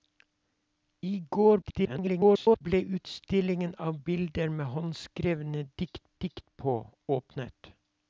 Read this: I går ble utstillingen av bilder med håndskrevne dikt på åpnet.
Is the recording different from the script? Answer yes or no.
yes